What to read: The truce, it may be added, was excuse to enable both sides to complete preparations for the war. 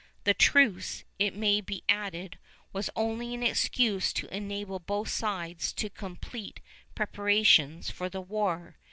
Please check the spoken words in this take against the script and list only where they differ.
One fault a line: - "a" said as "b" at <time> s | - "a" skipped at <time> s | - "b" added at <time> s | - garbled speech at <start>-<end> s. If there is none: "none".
- "only an" added at 3.0 s